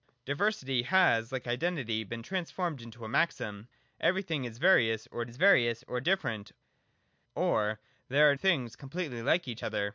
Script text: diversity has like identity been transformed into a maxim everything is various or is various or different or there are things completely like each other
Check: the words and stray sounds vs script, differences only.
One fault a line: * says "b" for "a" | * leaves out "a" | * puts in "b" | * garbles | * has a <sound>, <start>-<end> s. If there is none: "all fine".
all fine